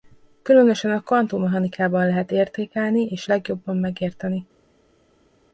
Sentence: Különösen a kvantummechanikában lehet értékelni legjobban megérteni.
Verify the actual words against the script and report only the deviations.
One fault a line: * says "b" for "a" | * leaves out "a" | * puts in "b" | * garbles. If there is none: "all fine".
* puts in "és"